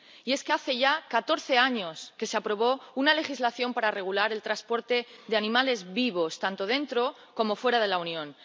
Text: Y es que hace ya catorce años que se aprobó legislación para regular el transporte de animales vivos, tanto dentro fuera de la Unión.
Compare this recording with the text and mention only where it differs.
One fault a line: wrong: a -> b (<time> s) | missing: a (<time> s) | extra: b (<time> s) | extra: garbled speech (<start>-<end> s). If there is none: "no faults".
extra: una (2.9 s)
extra: como (7.3 s)